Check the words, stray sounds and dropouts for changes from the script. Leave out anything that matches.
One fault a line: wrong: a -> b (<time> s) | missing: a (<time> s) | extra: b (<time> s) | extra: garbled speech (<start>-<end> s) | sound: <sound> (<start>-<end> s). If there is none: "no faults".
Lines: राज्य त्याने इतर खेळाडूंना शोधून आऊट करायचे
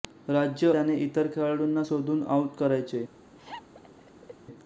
sound: laugh (3.4-4.3 s)